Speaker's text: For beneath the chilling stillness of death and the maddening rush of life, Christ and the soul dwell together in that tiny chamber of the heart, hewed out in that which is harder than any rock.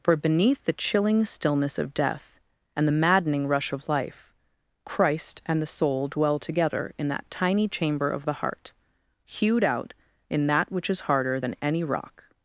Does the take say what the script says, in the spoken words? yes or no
yes